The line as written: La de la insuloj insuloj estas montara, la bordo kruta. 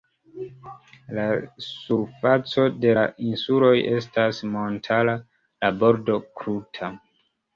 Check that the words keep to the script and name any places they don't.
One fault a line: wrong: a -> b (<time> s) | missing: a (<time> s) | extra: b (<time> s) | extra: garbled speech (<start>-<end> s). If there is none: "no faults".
extra: surfaco (1.6 s)
missing: insuloj (3.7 s)